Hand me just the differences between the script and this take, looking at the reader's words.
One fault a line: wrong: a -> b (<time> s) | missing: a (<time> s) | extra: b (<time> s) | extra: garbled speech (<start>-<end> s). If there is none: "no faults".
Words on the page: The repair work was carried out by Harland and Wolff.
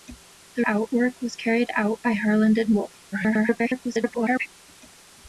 wrong: repair -> out (0.6 s)
extra: garbled speech (3.1-4.5 s)